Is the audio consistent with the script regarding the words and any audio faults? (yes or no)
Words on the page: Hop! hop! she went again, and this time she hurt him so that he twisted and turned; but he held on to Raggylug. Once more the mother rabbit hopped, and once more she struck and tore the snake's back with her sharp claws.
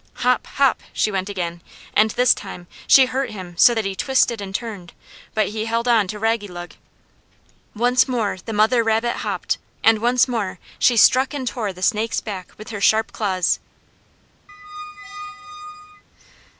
no